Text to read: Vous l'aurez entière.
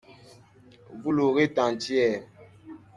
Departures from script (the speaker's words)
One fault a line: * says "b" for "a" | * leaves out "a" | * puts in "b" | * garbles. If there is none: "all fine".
all fine